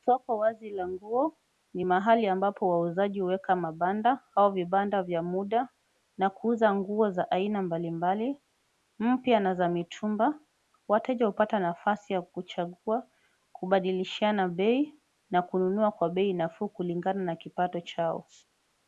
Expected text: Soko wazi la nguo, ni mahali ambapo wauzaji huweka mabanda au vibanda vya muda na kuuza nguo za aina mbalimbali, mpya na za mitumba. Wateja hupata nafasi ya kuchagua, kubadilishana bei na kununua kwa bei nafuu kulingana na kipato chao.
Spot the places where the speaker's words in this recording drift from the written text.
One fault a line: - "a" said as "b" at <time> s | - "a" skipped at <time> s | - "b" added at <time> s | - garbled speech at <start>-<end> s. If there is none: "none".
none